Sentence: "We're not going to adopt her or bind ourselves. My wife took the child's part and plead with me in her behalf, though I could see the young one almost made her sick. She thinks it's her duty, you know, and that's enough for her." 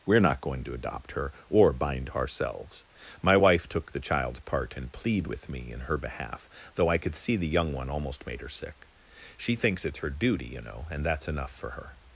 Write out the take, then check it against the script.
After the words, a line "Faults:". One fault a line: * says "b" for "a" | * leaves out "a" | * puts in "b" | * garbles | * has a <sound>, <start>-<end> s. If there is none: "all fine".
"We're not going to adopt her or bind ourselves. My wife took the child's part and plead with me in her behalf, though I could see the young one almost made her sick. She thinks it's her duty, you know, and that's enough for her."
Faults:
all fine